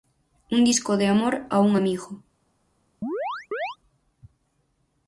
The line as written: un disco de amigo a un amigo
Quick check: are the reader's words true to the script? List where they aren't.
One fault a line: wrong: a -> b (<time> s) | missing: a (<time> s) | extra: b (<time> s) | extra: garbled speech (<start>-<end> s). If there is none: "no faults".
wrong: amigo -> amor (1.1 s)